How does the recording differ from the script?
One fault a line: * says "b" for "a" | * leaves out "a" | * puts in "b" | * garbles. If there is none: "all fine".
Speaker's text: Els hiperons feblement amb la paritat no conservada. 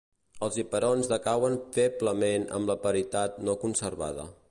* puts in "decauen"